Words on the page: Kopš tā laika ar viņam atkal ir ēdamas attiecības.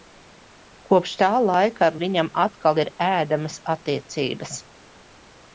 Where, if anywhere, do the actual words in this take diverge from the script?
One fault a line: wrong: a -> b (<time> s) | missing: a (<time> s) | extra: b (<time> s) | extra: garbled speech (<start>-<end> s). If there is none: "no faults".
no faults